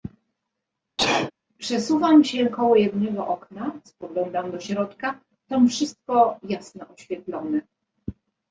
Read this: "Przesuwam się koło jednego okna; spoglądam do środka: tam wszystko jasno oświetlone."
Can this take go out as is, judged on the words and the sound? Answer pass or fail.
fail